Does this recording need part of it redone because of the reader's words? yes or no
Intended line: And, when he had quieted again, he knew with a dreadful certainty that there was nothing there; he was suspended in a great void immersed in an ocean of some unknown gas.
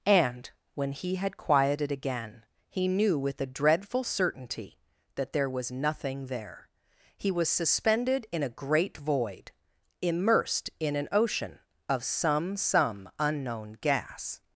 yes